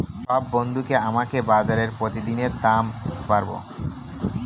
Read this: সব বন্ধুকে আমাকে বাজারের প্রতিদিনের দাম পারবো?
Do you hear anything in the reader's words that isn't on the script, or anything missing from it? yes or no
no